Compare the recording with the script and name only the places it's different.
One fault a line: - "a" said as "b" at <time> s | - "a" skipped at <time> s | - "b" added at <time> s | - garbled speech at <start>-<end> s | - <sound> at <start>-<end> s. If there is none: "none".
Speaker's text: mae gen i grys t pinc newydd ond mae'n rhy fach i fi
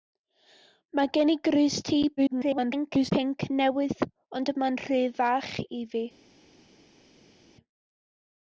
- garbled speech at 2.2-3.1 s